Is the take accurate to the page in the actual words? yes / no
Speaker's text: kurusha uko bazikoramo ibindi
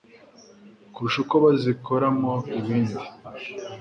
yes